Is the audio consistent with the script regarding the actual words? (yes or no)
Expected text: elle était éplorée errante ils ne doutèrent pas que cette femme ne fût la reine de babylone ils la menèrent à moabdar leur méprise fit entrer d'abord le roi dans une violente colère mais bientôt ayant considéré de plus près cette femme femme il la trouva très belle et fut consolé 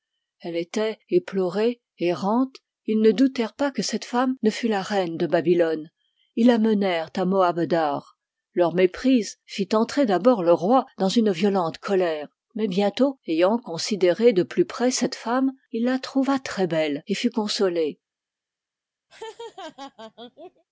no